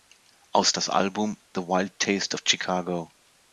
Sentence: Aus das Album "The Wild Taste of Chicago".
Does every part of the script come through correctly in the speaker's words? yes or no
yes